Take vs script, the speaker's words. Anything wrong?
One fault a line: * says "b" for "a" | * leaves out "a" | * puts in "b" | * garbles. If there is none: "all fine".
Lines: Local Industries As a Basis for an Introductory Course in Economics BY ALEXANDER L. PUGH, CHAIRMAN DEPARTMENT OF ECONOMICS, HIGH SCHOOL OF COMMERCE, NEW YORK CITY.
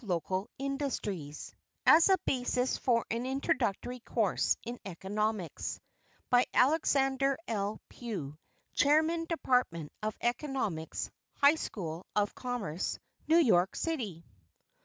all fine